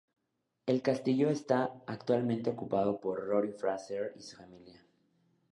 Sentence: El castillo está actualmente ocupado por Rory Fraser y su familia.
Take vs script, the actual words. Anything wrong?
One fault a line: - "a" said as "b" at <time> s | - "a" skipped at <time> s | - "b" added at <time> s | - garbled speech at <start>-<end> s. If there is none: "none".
none